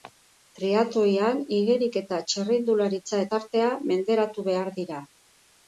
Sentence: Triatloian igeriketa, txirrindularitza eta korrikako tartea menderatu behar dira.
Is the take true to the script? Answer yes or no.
no